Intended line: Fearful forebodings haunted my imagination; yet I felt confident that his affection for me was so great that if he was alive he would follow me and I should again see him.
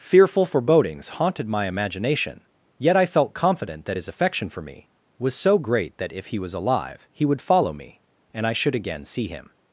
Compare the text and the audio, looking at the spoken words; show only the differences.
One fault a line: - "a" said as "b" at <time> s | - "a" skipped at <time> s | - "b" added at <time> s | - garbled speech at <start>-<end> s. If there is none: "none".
none